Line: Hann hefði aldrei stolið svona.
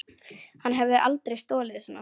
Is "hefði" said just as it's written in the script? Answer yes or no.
yes